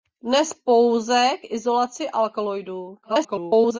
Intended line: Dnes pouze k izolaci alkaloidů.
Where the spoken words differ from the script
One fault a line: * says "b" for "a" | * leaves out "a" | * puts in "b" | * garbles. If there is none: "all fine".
* garbles